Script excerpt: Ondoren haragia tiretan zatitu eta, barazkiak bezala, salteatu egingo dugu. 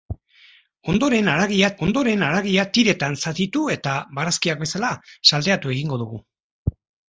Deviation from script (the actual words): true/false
true